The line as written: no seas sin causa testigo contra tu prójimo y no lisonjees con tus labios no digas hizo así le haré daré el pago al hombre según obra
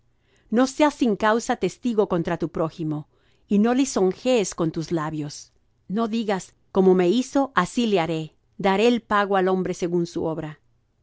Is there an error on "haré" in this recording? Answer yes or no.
no